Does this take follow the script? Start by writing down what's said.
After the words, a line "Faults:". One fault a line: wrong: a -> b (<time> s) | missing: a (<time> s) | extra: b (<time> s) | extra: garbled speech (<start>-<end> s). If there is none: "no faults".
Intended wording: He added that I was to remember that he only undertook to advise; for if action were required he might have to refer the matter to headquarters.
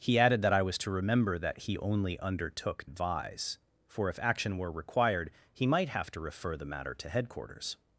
He added that I was to remember that he only undertook advise; for if action were required he might have to refer the matter to headquarters.
Faults:
missing: to (2.9 s)